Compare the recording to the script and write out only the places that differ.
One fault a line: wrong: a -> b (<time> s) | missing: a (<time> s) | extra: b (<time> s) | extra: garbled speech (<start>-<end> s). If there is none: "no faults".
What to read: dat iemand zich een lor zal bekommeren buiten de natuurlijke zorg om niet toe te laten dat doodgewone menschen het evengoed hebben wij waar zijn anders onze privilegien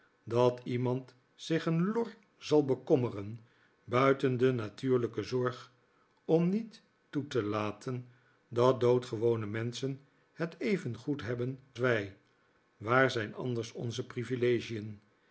no faults